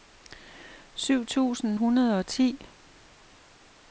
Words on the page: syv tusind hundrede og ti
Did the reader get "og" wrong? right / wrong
right